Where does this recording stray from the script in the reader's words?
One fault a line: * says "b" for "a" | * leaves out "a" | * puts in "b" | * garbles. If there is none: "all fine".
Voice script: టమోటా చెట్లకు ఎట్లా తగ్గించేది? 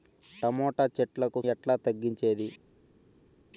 all fine